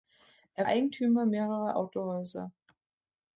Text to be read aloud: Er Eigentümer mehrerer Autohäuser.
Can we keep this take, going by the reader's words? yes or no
yes